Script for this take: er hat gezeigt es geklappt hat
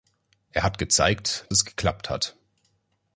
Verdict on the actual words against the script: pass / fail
pass